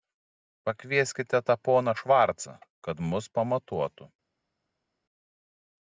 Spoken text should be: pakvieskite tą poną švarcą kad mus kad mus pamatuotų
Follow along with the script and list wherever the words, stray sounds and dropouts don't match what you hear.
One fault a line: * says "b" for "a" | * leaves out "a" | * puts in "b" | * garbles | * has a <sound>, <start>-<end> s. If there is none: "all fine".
* leaves out "kad mus"